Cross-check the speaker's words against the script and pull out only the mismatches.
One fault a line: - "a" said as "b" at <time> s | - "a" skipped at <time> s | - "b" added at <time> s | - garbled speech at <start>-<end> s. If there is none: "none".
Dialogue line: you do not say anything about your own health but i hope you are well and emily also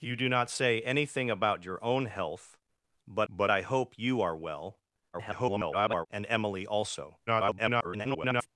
- "but" added at 3.3 s
- garbled speech at 5.1-6.1 s
- garbled speech at 7.3-8.5 s